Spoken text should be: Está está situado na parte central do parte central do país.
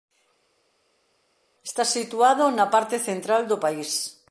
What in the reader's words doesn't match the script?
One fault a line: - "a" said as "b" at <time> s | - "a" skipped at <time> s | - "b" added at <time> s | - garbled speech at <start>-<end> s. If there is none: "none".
- "está" skipped at 1.8 s
- "parte central do" skipped at 3.6 s